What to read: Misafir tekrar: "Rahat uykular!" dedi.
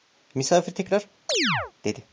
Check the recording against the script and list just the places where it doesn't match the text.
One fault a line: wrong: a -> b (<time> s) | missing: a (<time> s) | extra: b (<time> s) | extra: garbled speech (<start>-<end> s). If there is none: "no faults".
missing: Rahat uykular (1.1 s)